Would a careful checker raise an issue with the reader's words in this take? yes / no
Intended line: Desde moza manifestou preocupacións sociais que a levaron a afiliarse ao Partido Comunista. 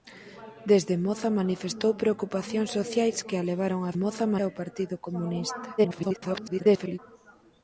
yes